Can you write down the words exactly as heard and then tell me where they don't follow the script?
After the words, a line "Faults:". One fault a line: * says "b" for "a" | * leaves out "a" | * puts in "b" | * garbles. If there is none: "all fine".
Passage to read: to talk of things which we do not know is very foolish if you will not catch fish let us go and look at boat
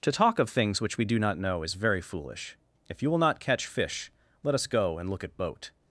to talk of things which we do not know is very foolish if you will not catch fish let us go and look at boat
Faults:
all fine